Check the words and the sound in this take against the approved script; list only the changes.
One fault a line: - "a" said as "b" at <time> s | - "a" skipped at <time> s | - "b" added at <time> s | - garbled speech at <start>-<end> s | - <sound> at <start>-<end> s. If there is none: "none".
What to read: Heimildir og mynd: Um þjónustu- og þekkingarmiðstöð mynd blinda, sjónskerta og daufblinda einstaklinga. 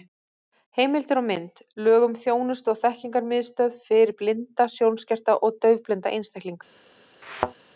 - "Lög" added at 1.9 s
- "mynd" said as "fyrir" at 3.9 s
- thud at 7.2-7.5 s